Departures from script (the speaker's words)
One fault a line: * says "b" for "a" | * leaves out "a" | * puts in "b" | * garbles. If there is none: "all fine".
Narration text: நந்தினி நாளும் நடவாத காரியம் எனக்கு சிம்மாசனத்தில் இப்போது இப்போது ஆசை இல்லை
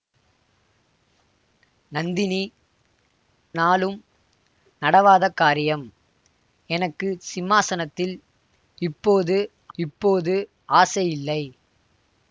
all fine